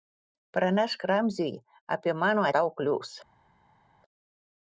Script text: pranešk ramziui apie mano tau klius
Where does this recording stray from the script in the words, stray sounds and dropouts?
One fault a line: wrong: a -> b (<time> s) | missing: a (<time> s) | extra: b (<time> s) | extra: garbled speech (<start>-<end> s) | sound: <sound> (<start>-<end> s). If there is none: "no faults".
no faults